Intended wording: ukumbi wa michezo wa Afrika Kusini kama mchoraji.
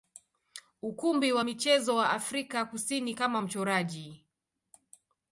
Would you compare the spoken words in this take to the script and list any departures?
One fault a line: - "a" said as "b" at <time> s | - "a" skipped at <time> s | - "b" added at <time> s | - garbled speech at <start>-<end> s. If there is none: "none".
none